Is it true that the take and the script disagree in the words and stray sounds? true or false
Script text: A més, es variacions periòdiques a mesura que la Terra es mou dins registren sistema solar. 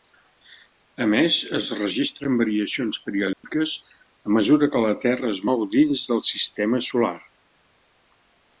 true